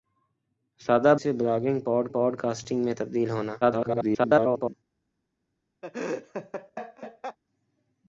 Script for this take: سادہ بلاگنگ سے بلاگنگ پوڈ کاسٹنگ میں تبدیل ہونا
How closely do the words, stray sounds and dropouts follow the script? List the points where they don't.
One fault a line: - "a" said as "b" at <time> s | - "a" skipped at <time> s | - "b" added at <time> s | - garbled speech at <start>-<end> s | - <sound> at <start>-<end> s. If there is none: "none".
- "بلاگنگ" skipped at 1.1 s
- "پوڈ" added at 2.1 s
- garbled speech at 3.6-4.7 s
- laugh at 5.8-7.4 s